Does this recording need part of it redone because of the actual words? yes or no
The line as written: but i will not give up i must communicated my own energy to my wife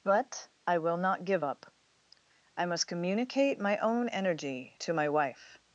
yes